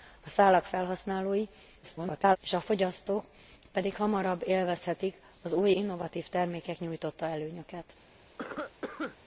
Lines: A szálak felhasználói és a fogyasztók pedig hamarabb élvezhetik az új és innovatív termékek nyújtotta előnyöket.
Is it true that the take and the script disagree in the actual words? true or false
true